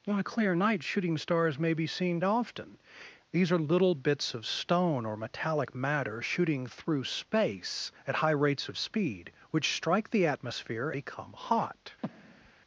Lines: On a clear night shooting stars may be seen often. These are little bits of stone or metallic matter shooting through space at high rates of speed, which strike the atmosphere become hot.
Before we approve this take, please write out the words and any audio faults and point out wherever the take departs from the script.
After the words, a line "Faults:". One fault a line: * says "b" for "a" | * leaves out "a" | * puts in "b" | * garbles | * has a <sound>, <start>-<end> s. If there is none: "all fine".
On a clear night shooting stars may be seen often. These are little bits of stone or metallic matter shooting through space at high rates of speed, which strike the atmosphere become hot.
Faults:
* has a breath, 12.0-12.5 s